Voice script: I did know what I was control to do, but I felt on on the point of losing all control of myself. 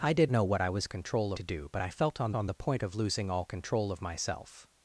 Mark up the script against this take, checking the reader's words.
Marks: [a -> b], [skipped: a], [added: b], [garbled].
I did know what I was control to do, but I felt on on the point of losing all control of myself.